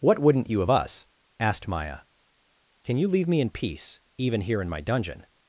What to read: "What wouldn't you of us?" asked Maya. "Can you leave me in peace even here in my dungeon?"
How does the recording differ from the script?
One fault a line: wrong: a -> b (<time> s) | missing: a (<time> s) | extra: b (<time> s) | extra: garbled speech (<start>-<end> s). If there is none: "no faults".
no faults